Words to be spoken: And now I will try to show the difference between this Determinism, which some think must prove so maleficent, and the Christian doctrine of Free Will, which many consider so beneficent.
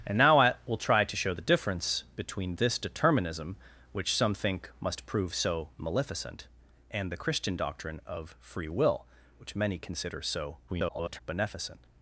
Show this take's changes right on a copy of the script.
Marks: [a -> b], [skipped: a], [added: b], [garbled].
And now I will try to show the difference between this Determinism, which some think must prove so maleficent, and the Christian doctrine of Free Will, which many consider so [garbled] beneficent.